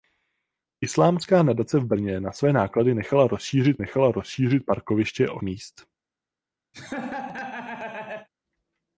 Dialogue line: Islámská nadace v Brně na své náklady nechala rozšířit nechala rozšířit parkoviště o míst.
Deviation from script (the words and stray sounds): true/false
true